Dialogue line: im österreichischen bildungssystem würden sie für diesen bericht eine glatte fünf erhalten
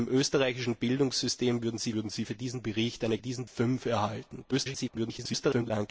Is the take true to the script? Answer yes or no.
no